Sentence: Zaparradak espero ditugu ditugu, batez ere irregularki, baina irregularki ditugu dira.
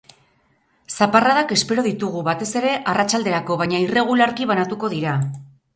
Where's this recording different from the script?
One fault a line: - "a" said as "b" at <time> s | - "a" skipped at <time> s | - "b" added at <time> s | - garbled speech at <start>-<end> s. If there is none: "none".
- "ditugu" skipped at 2.2 s
- "irregularki" said as "arratsalderako" at 3.0 s
- "ditugu" said as "banatuko" at 4.5 s